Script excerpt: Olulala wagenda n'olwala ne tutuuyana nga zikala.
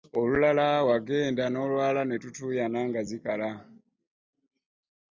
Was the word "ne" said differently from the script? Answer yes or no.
no